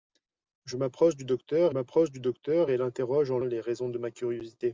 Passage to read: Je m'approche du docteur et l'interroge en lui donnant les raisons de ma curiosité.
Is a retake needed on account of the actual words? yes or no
yes